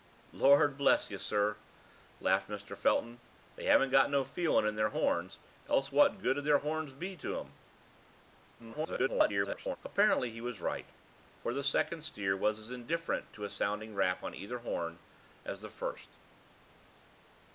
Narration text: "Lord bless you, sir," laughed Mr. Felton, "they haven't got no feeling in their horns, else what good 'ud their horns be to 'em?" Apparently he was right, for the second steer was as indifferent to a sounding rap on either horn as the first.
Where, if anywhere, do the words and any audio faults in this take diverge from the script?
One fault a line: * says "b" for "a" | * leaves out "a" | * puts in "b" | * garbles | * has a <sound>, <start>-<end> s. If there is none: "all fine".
* garbles